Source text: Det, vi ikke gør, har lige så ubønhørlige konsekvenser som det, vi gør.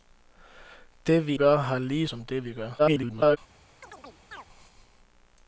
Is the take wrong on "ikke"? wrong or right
wrong